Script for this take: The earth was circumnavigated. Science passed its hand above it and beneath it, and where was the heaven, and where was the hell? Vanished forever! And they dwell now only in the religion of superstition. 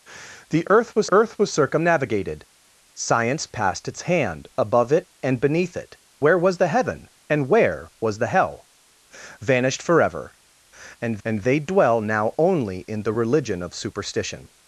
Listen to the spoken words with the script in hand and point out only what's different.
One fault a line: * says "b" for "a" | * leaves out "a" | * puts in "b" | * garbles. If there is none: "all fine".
* puts in "earth was"
* leaves out "and"
* puts in "and"